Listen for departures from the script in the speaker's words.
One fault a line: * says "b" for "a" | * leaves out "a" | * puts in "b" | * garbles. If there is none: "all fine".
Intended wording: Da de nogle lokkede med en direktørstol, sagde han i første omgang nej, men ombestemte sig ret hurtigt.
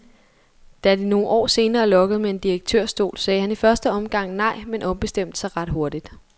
* puts in "år senere"